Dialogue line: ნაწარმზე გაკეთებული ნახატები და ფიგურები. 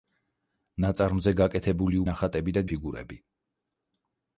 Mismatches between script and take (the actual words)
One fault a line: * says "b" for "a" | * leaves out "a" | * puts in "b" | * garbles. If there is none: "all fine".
all fine